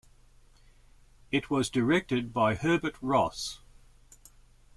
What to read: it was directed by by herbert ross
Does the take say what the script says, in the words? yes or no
no